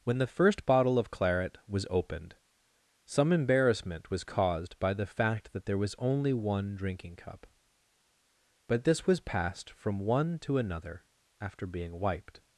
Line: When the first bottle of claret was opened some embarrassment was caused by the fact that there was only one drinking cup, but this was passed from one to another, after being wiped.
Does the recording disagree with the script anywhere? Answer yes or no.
no